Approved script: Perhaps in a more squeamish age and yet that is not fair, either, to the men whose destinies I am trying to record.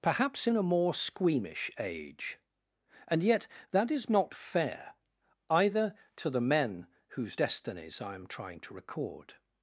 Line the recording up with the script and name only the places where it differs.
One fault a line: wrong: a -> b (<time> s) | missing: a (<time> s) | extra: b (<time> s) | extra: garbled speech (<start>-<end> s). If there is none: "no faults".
no faults